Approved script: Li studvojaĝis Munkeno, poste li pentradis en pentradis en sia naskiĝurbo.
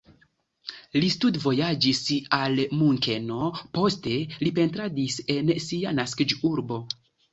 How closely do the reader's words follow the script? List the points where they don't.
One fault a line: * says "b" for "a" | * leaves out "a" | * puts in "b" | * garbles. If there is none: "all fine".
* puts in "al"
* leaves out "pentradis en"